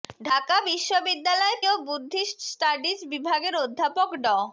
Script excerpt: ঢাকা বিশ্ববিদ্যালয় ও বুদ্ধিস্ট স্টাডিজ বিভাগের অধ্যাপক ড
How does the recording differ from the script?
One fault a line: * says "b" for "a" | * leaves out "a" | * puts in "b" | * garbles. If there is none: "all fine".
all fine